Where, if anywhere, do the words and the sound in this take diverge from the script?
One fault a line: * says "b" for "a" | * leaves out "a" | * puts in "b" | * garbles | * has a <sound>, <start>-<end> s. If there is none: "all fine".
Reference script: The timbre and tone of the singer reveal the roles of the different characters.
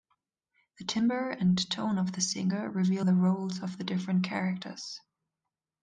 all fine